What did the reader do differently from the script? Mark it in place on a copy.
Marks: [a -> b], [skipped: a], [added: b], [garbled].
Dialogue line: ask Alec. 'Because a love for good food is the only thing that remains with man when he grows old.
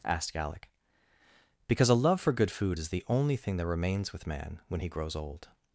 [ask -> asked] Alec. 'Because a love for good food is the only thing that remains with man when he grows old.